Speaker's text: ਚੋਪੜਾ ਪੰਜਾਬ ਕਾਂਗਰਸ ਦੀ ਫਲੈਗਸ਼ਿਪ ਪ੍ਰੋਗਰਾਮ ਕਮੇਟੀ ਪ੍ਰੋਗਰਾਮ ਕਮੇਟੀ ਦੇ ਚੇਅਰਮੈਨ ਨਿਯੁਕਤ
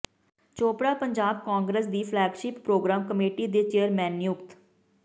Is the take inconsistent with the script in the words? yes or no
yes